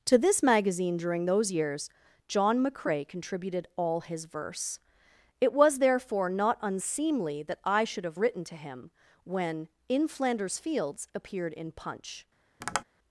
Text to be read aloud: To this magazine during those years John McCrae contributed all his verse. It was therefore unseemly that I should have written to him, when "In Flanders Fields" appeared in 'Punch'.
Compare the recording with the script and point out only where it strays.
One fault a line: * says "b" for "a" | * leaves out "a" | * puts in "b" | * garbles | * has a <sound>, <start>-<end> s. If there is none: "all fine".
* puts in "not"
* has a tap, 12.6-12.8 s